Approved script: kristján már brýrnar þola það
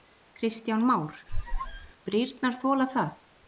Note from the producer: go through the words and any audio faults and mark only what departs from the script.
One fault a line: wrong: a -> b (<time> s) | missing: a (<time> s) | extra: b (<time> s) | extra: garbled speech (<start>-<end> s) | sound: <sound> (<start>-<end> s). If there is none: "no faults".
sound: squeak (1.3-1.9 s)